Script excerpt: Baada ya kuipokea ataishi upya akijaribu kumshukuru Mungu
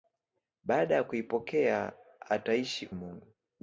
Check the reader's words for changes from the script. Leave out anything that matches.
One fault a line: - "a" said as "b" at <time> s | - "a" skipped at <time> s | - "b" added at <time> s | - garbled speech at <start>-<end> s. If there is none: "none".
- "upya akijaribu kumshukuru" skipped at 2.9 s